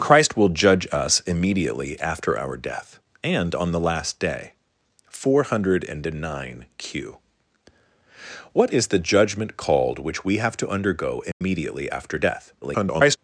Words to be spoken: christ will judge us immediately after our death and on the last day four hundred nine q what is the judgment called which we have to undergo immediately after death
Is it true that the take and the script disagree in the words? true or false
true